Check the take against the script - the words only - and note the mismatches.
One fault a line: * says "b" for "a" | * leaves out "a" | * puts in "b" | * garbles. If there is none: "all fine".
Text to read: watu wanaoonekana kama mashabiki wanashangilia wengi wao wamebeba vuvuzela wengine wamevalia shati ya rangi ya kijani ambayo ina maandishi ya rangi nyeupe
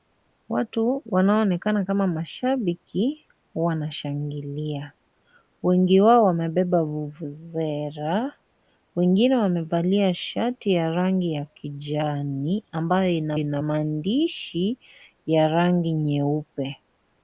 * puts in "ina"